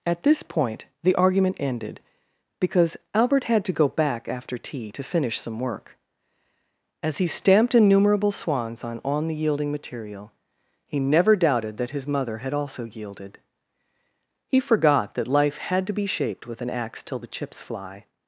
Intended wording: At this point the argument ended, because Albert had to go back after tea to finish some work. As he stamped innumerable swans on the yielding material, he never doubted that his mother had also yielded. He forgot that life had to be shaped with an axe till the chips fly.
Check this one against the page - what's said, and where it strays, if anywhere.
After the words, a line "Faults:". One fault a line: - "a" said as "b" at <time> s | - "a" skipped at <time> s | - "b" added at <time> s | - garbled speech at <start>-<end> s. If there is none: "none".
At this point the argument ended, because Albert had to go back after tea to finish some work. As he stamped innumerable swans on on the yielding material, he never doubted that his mother had also yielded. He forgot that life had to be shaped with an axe till the chips fly.
Faults:
- "on" added at 9.0 s